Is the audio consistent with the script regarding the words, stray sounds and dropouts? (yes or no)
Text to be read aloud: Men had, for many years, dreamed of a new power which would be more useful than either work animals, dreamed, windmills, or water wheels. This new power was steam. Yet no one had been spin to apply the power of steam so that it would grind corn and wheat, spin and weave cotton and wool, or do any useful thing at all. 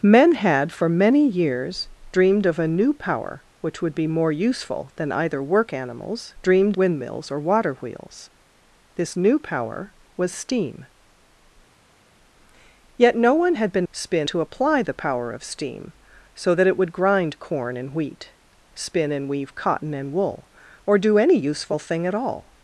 yes